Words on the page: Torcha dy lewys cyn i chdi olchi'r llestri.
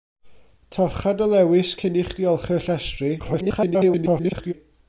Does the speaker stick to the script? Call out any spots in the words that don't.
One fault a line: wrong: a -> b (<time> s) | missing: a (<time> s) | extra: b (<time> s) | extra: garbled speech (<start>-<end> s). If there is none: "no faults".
extra: garbled speech (3.2-4.5 s)